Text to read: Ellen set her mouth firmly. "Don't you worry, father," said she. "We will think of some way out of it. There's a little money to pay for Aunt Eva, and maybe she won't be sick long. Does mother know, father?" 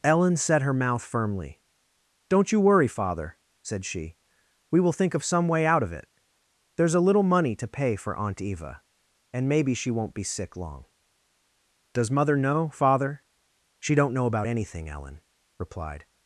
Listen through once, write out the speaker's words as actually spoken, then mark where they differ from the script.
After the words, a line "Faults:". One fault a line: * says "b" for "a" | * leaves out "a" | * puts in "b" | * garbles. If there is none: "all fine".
Ellen set her mouth firmly. "Don't you worry, father," said she. "We will think of some way out of it. There's a little money to pay for Aunt Eva, and maybe she won't be sick long. Does mother know, father?" "She don't know about anything, Ellen," replied
Faults:
* puts in "She don't know about anything Ellen replied"